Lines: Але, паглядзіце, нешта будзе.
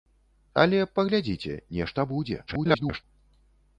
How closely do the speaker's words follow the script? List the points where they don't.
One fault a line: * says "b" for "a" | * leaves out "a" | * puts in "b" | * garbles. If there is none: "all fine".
* garbles